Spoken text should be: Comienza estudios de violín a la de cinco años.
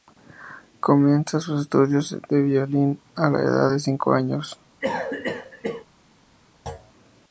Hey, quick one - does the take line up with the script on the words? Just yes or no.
no